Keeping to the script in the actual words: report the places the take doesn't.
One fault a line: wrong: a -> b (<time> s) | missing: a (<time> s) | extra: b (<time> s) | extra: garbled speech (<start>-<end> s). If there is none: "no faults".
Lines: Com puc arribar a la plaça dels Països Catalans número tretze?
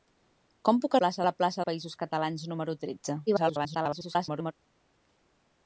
wrong: arribar -> plaça (1.0 s)
missing: dels (1.6 s)
extra: garbled speech (3.3-4.5 s)